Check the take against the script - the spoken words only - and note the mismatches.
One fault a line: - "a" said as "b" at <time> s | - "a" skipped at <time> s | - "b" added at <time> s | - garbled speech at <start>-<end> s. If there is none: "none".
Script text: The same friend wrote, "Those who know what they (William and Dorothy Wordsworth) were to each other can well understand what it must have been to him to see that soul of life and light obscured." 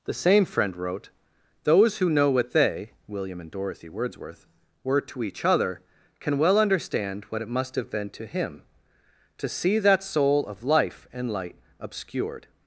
none